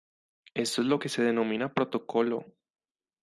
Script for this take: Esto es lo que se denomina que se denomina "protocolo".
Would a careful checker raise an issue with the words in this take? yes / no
yes